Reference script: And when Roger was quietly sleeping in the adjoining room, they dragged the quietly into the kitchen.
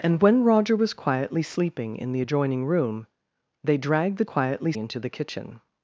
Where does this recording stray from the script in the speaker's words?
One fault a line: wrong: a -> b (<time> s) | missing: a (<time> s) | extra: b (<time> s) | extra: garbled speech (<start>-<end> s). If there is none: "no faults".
no faults